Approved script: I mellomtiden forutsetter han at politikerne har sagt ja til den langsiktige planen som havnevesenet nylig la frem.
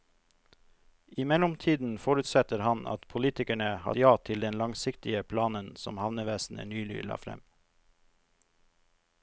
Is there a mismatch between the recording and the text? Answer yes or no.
yes